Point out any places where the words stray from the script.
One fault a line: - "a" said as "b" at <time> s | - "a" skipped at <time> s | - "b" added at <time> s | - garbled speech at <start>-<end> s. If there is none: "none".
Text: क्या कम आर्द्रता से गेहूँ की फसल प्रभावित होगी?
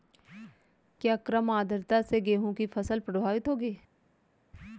none